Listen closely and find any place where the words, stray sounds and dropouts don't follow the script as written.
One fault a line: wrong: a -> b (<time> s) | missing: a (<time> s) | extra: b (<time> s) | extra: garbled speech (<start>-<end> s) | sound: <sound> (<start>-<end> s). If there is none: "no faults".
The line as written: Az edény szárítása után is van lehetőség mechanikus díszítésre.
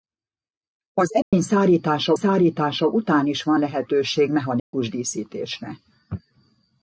sound: dropout (1.2-1.3 s)
extra: szárítása (2.1 s)
sound: dropout (4.6-4.7 s)